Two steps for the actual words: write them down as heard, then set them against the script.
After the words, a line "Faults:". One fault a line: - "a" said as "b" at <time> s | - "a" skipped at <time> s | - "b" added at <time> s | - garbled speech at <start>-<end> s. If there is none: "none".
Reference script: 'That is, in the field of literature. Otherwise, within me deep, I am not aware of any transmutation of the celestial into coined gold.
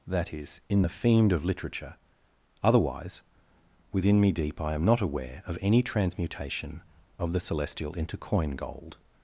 'That is, in the fiend of literature. Otherwise, within me deep, I am not aware of any transmutation of the celestial into coin gold.
Faults:
- "field" said as "fiend" at 0.9 s
- "coined" said as "coin" at 8.2 s